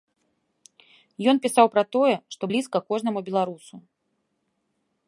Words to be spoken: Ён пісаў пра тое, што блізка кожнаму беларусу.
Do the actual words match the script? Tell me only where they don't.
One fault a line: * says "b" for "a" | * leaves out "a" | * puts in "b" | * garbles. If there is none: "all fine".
all fine